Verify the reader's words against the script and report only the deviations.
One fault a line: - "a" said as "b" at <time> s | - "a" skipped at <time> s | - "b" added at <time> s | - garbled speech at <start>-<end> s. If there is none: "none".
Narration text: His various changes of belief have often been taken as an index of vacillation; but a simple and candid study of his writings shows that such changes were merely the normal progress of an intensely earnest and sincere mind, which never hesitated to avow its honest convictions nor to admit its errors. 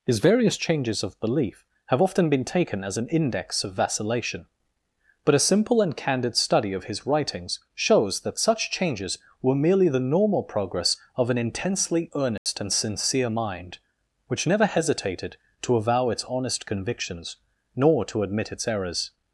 none